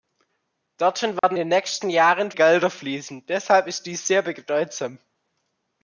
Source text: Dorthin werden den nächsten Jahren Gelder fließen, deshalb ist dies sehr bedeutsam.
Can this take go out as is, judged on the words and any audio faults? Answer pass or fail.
fail